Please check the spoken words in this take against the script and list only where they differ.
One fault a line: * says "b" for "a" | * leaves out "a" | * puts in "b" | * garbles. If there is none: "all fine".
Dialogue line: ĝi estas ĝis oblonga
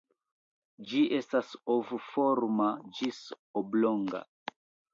* puts in "ov forma"